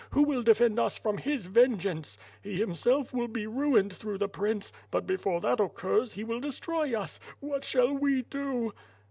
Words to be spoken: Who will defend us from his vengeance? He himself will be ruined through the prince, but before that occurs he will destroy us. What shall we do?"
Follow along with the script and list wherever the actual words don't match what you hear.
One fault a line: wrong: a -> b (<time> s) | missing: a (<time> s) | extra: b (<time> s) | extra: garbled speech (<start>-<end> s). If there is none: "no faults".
no faults